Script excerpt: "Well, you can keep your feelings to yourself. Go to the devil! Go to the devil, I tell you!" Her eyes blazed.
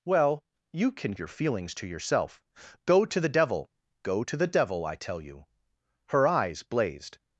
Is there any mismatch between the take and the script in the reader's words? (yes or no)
yes